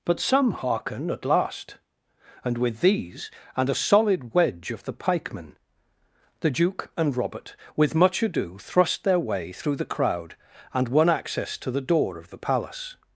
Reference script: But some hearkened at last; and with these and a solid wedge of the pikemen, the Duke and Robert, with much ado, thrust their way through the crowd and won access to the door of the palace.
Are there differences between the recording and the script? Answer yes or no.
yes